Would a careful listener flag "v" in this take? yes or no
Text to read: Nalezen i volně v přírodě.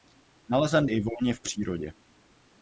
no